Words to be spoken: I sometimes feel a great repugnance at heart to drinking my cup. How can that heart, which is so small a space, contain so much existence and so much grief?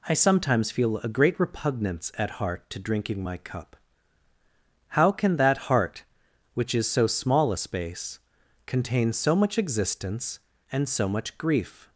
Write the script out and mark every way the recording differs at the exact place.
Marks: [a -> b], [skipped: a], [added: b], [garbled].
I sometimes feel a great repugnance at heart to drinking my cup. How can that heart, which is so small a space, contain so much existence and so much grief?